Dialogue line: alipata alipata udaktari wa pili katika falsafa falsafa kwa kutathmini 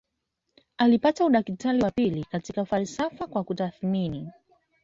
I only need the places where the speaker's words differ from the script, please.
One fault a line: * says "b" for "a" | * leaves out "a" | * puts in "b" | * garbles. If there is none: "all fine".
* leaves out "alipata"
* leaves out "falsafa"